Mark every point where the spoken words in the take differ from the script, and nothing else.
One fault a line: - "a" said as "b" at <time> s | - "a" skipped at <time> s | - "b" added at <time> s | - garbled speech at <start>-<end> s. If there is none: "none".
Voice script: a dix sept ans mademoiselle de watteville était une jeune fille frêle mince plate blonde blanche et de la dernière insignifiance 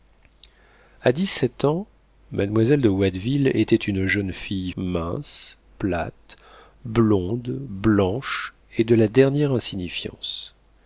- "frêle" skipped at 4.7 s